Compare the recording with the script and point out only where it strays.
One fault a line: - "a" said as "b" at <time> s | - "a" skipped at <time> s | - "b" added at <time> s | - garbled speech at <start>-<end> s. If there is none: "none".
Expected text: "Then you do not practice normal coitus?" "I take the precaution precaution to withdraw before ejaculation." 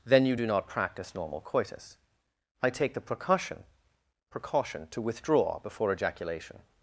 none